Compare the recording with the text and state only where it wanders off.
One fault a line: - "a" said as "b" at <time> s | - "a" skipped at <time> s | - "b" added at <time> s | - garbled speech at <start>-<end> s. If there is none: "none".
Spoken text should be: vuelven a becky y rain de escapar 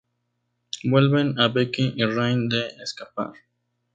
none